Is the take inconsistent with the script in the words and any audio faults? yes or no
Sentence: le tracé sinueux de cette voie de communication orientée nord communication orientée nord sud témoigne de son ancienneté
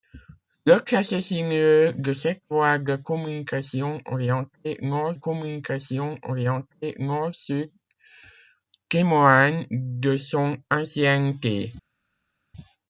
no